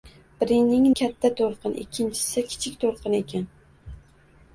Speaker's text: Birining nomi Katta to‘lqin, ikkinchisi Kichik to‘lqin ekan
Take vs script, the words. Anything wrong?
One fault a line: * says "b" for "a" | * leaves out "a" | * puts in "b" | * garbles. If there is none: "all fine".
* leaves out "nomi"